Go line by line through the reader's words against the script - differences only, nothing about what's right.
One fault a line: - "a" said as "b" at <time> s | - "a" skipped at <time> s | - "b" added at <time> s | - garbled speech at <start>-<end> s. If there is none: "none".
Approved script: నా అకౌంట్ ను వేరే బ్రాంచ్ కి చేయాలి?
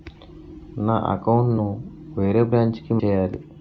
none